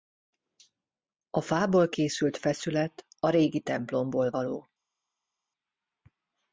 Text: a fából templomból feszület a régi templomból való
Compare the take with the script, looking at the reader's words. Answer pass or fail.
fail